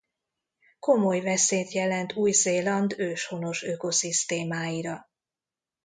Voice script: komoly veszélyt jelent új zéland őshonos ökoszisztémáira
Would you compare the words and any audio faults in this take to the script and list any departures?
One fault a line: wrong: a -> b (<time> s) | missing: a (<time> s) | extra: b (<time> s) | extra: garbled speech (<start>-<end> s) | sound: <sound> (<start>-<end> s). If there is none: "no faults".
no faults